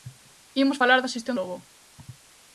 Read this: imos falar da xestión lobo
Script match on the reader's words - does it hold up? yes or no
yes